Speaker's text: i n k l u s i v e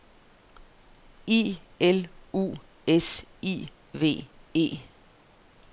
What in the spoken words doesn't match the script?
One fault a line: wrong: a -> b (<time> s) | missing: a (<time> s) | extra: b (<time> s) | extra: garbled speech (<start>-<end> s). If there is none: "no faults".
missing: n k (1.6 s)